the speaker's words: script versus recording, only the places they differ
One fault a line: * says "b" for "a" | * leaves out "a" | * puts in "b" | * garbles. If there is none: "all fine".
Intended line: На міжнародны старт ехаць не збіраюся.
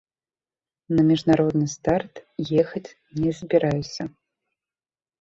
all fine